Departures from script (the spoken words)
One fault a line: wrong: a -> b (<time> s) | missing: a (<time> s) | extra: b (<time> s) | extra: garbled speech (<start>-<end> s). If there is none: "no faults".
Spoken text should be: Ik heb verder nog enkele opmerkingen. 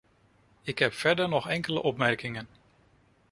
no faults